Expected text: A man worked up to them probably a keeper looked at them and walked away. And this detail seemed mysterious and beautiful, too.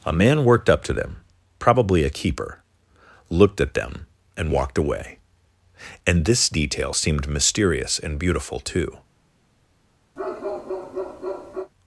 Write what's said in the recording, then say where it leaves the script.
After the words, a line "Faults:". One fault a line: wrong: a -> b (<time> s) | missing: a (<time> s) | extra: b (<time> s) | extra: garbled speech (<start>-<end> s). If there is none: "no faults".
A man worked up to them probably a keeper looked at them and walked away. And this detail seemed mysterious and beautiful, too.
Faults:
no faults